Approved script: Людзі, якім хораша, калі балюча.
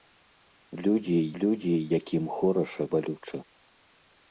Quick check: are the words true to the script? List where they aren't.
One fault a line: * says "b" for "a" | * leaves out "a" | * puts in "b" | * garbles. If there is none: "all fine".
* puts in "людзі"
* leaves out "калі"